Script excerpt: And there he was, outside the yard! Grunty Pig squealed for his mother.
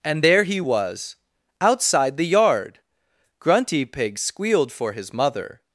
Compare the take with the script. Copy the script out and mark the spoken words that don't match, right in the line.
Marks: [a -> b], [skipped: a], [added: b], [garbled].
And there he was, outside the yard! Grunty Pig squealed for his mother.